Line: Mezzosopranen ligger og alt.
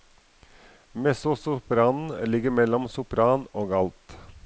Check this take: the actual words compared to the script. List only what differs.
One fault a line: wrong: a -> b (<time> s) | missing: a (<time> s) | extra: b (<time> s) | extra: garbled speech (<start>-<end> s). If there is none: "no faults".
extra: mellom sopran (2.5 s)